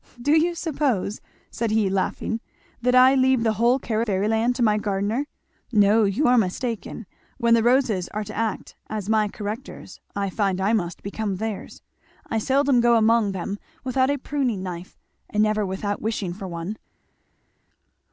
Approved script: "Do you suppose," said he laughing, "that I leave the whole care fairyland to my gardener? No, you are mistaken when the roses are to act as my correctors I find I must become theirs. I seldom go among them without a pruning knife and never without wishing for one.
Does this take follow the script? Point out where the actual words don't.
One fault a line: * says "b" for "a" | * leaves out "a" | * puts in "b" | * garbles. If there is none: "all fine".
all fine